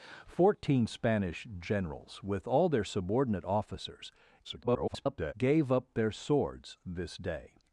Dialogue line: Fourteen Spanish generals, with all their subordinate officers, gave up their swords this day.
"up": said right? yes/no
yes